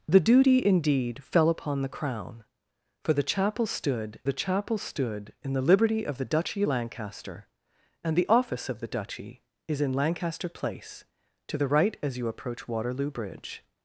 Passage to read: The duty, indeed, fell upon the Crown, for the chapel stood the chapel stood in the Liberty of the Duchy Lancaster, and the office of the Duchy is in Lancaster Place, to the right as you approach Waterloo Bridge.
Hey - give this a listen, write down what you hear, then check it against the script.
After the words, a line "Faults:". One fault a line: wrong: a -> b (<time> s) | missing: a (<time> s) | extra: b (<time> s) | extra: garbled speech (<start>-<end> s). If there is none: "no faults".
The duty, indeed, fell upon the Crown, for the chapel stood the chapel stood in the Liberty of the Duchy Lancaster, and the office of the Duchy is in Lancaster Place, to the right as you approach Waterloo Bridge.
Faults:
no faults